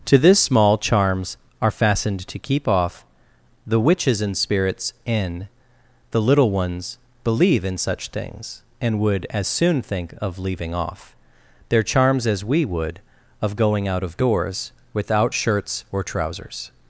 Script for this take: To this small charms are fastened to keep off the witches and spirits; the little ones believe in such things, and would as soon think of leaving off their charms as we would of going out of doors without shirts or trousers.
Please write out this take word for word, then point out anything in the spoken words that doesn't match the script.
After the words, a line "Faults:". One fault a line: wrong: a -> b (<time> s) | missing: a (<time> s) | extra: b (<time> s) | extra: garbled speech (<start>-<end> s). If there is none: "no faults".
To this small charms are fastened to keep off the witches and spirits; in the little ones believe in such things, and would as soon think of leaving off their charms as we would of going out of doors without shirts or trousers.
Faults:
extra: in (5.1 s)